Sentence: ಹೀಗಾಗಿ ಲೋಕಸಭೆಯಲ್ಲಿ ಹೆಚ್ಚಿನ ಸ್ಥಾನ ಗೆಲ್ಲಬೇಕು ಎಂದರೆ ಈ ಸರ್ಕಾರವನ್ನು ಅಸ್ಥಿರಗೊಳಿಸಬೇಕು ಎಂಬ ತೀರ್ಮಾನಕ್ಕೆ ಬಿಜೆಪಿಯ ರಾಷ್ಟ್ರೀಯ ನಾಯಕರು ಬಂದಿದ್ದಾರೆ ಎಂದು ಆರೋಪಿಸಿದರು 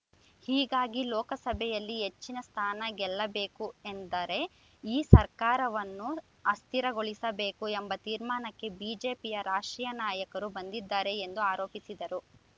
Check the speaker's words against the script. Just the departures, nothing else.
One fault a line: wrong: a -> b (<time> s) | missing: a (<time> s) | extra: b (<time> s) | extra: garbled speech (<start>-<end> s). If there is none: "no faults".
no faults